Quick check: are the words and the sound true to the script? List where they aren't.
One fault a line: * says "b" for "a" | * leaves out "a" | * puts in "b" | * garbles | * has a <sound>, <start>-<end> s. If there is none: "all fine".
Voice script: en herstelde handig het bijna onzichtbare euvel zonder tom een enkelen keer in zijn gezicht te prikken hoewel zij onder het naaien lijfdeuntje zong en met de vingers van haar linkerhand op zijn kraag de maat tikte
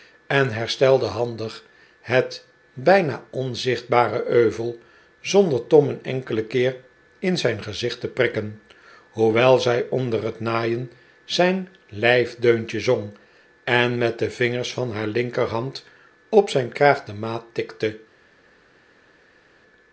* puts in "zijn"